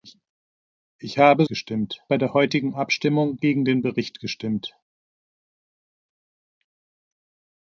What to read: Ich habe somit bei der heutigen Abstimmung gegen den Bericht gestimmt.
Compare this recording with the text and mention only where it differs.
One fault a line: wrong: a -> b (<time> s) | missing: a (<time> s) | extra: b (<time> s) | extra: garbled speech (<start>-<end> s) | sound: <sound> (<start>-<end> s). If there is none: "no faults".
wrong: somit -> gestimmt (1.5 s)